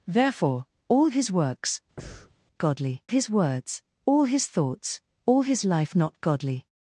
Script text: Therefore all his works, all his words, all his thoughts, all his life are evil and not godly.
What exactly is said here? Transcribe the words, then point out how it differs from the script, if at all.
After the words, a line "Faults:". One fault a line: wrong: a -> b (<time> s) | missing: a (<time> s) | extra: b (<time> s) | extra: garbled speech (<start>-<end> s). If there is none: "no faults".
Therefore all his works, godly his words, all his thoughts, all his life not godly.
Faults:
wrong: all -> godly (2.6 s)
missing: are evil and (5.9 s)